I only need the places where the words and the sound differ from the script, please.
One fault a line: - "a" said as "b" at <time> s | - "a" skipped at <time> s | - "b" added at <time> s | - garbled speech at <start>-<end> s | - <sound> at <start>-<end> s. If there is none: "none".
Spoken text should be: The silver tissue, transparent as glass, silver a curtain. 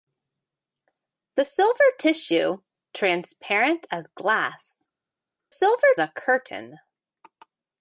none